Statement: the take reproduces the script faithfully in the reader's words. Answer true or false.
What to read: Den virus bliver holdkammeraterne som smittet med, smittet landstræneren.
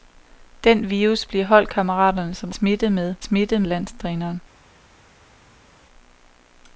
true